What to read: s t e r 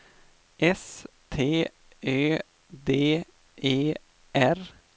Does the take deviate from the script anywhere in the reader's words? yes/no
yes